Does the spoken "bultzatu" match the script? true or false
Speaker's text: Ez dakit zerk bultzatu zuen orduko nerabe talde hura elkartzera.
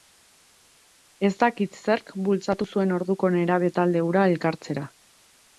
true